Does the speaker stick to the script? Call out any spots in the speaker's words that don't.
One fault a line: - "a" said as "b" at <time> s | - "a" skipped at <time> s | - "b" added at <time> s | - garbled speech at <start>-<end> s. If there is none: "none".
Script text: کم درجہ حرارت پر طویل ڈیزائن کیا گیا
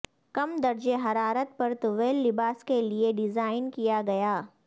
- "لباس کے لئے" added at 2.3 s